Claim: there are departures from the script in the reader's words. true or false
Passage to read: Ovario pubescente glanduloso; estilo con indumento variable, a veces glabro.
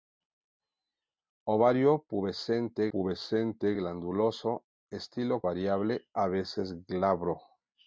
true